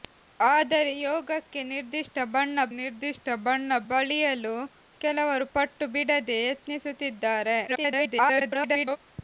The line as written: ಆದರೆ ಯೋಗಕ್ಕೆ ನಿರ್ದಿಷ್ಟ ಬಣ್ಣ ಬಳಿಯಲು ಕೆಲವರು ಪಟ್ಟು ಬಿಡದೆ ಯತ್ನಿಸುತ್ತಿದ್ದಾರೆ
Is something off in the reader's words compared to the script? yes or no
yes